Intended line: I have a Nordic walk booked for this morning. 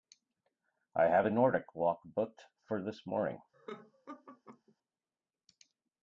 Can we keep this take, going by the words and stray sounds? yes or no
no